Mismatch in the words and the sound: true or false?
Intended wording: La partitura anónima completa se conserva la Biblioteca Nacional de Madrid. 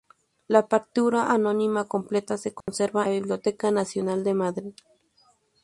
true